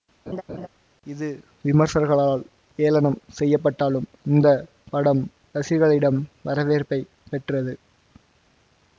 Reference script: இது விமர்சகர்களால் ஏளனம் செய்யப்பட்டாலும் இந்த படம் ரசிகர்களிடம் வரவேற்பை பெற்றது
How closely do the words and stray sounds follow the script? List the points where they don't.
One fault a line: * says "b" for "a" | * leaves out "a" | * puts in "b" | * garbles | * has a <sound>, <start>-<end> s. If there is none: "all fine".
* has a laugh, 0.3-0.7 s